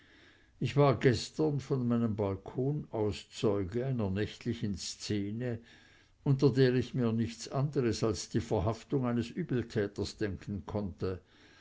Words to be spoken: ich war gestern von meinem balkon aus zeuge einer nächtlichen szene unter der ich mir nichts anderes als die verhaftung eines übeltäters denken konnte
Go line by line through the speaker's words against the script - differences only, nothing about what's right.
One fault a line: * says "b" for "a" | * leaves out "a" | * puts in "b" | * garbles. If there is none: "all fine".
all fine